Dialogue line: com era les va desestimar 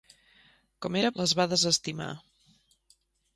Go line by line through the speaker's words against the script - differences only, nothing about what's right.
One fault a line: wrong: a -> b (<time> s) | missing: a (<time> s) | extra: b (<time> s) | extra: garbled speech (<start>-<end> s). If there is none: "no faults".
no faults